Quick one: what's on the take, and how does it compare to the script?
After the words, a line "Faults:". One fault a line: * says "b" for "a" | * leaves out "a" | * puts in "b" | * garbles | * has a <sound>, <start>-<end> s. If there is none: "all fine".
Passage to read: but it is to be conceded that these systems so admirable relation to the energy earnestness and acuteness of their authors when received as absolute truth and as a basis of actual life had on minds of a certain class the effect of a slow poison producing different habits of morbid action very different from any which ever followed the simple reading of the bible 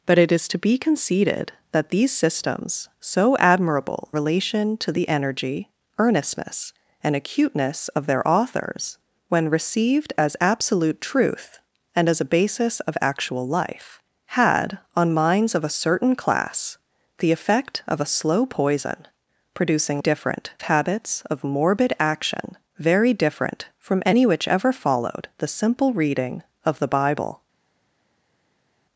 but it is to be conceded that these systems so admirable relation to the energy earnestness and acuteness of their authors when received as absolute truth and as a basis of actual life had on minds of a certain class the effect of a slow poison producing different habits of morbid action very different from any which ever followed the simple reading of the bible
Faults:
all fine